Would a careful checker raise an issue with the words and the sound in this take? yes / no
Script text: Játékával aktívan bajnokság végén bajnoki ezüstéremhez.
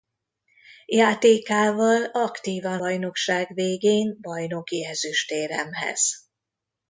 no